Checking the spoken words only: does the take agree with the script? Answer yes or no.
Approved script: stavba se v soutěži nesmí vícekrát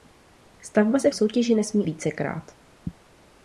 yes